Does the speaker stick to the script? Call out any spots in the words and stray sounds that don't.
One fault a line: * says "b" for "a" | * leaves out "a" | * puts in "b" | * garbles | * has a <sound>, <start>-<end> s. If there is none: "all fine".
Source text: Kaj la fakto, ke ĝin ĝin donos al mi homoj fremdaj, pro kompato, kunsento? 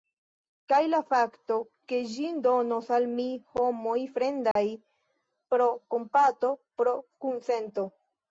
* leaves out "ĝin"
* has a dropout, 4.5-4.6 s
* puts in "pro"